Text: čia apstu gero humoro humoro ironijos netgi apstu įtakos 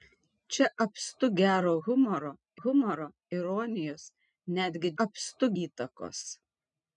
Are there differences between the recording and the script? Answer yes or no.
no